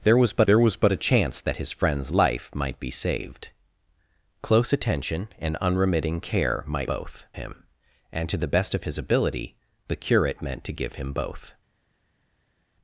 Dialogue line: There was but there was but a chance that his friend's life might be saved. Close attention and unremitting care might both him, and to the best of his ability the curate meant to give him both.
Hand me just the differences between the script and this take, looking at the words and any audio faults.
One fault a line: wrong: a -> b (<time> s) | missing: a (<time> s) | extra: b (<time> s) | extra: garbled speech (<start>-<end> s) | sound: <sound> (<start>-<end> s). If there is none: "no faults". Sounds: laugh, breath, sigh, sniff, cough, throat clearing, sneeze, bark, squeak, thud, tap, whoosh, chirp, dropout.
no faults